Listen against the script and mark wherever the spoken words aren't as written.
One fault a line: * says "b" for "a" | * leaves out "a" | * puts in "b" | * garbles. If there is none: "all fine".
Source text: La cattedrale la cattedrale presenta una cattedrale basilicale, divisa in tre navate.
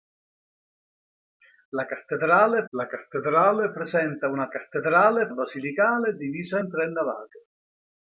all fine